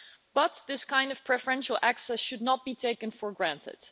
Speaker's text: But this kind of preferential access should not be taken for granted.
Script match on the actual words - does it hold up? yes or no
yes